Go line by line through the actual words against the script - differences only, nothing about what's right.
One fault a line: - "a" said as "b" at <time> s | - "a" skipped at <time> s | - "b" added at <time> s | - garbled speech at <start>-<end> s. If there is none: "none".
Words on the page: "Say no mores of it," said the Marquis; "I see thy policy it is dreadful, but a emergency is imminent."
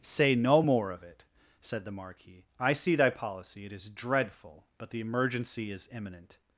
- "mores" said as "more" at 0.6 s
- "a" said as "the" at 4.9 s